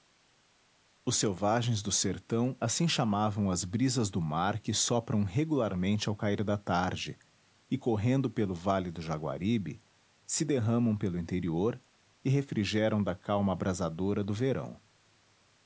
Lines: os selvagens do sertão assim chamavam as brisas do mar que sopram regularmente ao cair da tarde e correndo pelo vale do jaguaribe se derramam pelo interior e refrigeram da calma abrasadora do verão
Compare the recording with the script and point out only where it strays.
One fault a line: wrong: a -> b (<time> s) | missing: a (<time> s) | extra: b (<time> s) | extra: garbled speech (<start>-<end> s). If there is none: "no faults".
no faults